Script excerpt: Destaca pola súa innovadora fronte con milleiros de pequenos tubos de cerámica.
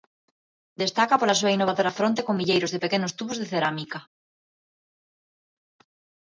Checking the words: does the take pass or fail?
pass